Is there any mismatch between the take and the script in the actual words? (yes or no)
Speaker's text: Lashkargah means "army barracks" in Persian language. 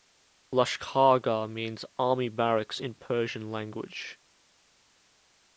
no